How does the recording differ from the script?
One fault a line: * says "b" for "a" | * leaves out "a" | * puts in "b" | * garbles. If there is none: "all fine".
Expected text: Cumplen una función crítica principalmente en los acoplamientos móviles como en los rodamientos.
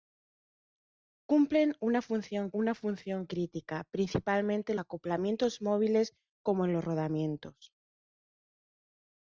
* puts in "una función"
* leaves out "los"